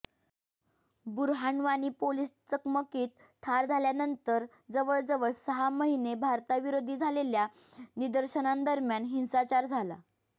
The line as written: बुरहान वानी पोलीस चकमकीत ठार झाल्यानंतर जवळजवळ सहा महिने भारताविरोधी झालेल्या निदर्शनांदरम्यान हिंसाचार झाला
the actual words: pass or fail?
pass